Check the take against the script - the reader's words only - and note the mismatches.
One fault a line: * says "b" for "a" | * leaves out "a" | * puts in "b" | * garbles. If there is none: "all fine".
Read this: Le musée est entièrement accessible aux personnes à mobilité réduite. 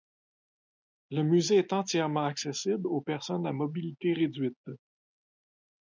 all fine